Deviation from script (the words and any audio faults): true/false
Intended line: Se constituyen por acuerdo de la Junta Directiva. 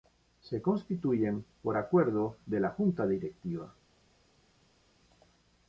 false